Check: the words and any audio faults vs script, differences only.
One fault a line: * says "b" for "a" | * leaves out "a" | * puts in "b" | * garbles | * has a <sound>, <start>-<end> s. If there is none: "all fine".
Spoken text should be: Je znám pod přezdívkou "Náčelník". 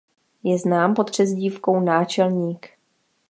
all fine